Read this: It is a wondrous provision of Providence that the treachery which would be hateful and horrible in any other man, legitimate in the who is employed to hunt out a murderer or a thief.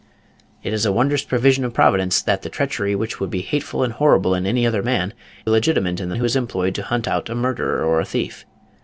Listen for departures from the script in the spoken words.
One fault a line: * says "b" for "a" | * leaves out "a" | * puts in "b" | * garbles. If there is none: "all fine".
all fine